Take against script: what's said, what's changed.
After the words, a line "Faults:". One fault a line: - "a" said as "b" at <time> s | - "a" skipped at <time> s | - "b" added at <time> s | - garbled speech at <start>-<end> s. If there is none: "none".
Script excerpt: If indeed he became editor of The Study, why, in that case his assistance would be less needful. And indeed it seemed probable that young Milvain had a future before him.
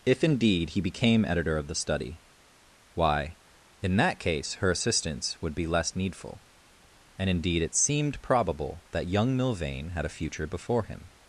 If indeed he became editor of The Study, why, in that case her assistance would be less needful. And indeed it seemed probable that young Milvain had a future before him.
Faults:
- "his" said as "her" at 4.5 s